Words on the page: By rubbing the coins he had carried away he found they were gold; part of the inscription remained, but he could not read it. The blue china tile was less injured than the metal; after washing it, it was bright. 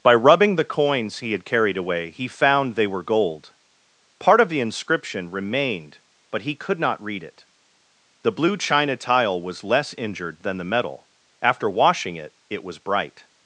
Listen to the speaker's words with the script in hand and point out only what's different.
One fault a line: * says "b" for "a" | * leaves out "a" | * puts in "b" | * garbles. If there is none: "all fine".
all fine